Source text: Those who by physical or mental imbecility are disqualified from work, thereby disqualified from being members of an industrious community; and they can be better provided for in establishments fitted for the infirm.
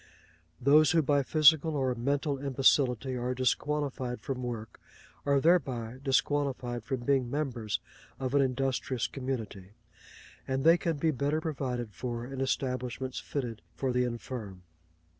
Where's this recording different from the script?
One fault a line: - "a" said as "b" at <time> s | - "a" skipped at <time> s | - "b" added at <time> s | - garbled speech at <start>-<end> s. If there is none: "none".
- "are" added at 5.3 s